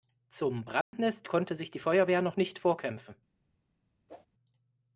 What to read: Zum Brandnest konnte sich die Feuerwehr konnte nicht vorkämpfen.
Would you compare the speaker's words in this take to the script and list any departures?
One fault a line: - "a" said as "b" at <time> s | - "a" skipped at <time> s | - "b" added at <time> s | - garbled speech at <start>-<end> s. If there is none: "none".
- "konnte" said as "noch" at 2.2 s